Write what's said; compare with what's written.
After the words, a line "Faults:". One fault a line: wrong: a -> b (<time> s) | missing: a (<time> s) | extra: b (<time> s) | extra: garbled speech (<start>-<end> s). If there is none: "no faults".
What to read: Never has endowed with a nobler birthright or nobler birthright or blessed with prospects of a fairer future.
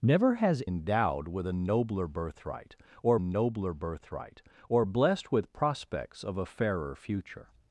Never has endowed with a nobler birthright or nobler birthright or blessed with prospects of a fairer future.
Faults:
no faults